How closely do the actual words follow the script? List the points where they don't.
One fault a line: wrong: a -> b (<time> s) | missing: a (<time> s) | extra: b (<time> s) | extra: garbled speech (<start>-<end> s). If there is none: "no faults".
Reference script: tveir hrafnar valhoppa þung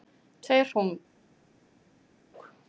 missing: hrafnar valhoppa (0.7 s)